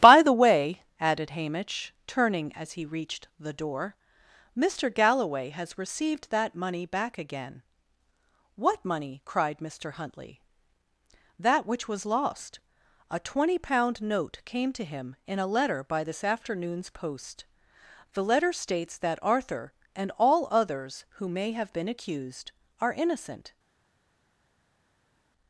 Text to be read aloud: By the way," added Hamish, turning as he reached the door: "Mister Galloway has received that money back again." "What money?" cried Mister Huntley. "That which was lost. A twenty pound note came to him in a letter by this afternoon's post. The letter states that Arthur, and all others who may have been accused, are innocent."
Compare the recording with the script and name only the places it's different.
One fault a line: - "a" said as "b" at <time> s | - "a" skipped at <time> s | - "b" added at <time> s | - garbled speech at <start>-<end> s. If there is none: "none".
none